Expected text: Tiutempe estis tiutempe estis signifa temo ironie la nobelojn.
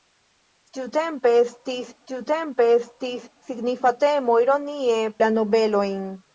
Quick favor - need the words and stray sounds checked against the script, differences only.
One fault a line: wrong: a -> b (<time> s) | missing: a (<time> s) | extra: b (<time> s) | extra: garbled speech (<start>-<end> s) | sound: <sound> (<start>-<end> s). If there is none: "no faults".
no faults